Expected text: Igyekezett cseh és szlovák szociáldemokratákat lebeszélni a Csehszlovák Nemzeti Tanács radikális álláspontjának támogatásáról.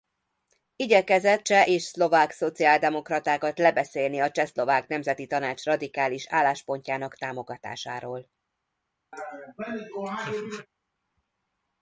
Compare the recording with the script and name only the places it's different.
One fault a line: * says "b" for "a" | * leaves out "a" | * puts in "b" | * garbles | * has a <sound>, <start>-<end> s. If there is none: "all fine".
* has a laugh, 9.1-10.7 s